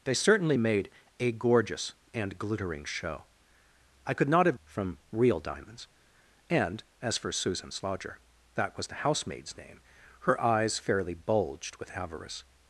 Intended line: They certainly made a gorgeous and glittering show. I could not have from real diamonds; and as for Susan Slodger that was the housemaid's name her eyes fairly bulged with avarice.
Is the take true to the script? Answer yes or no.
yes